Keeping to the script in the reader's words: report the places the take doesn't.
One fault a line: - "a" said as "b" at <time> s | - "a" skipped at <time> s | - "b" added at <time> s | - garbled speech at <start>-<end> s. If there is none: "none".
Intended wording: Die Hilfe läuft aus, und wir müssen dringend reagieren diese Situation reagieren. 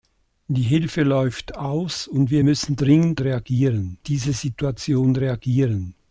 none